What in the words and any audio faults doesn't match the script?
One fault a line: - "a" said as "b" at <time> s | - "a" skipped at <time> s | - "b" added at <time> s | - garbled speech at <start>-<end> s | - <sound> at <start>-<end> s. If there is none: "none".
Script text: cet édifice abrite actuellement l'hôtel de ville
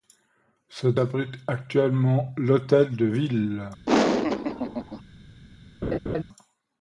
- "édifice" skipped at 1.0 s
- laugh at 3.9-5.0 s
- laugh at 5.8-6.2 s